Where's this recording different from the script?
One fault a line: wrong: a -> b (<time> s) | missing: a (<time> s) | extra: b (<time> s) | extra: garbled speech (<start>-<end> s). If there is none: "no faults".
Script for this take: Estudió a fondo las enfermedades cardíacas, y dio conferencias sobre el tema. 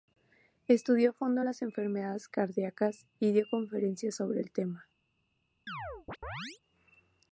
no faults